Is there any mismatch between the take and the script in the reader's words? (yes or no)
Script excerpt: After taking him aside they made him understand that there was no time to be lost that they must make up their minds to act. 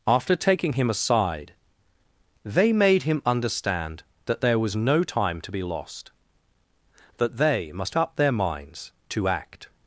yes